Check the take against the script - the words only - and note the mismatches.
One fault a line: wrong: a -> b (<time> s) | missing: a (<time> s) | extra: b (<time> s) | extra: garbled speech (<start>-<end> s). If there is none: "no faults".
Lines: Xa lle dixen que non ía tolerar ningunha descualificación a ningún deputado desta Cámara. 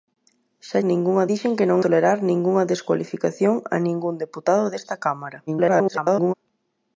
wrong: lle -> ningunha (0.9 s)
missing: ía (1.8 s)
extra: garbled speech (5.5-6.3 s)